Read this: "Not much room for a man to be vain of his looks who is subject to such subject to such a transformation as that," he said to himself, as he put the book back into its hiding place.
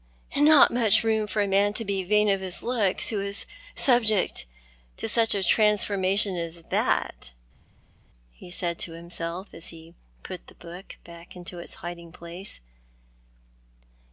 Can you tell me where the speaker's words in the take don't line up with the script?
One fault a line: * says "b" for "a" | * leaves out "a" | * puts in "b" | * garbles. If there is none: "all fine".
* leaves out "subject to such"